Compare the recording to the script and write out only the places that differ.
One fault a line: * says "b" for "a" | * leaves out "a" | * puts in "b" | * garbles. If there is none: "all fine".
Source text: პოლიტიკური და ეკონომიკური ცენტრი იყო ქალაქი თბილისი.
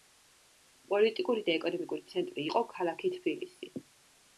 all fine